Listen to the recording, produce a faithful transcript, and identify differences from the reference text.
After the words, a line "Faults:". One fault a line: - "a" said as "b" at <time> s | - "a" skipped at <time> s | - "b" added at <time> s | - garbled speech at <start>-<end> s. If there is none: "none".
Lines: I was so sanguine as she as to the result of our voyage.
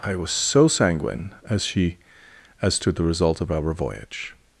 I was so sanguine as she as to the result of our voyage.
Faults:
none